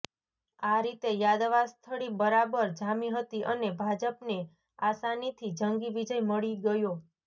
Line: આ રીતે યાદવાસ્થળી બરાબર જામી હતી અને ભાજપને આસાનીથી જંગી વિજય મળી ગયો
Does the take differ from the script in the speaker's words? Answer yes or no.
no